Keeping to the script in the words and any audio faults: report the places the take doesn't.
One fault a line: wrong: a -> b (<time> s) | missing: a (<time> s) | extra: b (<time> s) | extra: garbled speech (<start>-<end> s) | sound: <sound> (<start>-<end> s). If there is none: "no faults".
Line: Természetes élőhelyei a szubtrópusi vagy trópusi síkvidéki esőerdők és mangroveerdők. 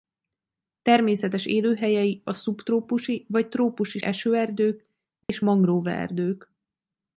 missing: síkvidéki (4.0 s)
sound: dropout (5.2-5.3 s)